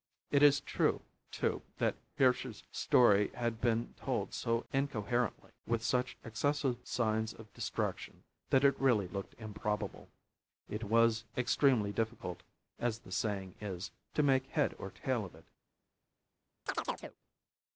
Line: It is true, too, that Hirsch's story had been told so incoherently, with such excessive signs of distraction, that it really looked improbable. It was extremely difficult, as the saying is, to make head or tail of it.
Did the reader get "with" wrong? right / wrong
right